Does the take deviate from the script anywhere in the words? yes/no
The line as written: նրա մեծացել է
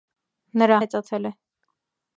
no